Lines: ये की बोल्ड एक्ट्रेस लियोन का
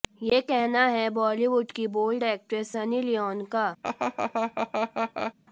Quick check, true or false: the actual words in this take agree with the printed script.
false